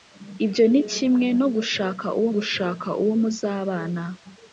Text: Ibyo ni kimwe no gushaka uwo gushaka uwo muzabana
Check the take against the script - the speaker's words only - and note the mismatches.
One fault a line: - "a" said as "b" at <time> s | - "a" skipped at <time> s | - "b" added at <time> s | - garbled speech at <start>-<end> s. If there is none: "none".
none